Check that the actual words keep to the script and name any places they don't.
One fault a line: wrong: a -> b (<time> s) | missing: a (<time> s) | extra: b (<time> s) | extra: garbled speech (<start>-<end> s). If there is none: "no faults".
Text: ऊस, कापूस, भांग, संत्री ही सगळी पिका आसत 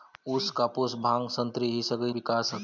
no faults